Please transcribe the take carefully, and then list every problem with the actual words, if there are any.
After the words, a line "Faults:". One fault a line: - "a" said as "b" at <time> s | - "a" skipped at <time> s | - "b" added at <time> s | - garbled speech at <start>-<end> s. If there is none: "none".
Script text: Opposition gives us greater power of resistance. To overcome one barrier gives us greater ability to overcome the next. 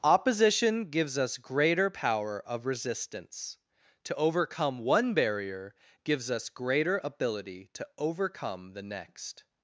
Opposition gives us greater power of resistance. To overcome one barrier gives us greater ability to overcome the next.
Faults:
none